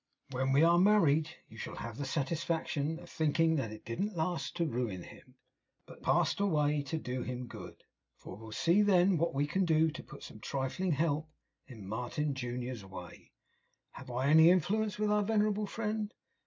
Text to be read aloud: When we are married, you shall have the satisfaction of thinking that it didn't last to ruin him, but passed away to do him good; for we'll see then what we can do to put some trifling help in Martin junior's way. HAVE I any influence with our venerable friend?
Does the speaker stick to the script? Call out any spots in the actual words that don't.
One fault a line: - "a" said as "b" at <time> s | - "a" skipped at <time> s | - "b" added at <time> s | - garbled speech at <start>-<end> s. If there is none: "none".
none